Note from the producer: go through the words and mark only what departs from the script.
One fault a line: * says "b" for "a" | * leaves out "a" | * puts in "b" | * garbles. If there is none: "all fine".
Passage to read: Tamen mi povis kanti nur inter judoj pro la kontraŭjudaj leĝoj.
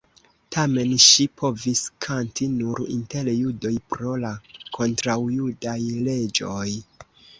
* says "ŝi" for "mi"